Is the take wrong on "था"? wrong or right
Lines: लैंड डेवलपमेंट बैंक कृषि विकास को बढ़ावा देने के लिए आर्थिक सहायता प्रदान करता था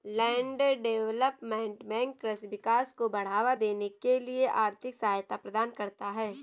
wrong